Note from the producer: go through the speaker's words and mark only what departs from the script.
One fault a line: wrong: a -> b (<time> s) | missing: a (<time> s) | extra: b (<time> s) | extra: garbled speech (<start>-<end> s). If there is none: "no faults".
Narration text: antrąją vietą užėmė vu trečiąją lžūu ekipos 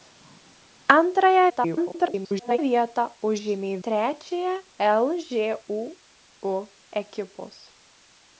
extra: garbled speech (1.5-2.6 s)
missing: vu (3.7 s)